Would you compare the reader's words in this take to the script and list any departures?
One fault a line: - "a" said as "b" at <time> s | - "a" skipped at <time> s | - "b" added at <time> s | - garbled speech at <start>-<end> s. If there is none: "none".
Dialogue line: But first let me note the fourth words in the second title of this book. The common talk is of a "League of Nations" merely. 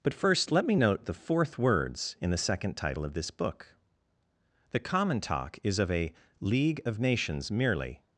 none